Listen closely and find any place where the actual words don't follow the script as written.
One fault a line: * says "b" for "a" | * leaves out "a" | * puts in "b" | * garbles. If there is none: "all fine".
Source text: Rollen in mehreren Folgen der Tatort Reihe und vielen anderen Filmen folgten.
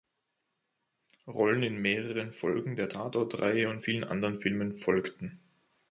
all fine